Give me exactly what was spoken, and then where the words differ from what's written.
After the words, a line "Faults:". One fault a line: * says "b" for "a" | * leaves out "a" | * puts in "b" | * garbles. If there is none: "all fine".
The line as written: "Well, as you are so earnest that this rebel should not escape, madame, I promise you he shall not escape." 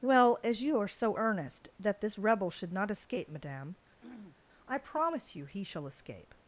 "Well, as you are so earnest that this rebel should not escape, madame, I promise you he shall escape."
Faults:
* leaves out "not"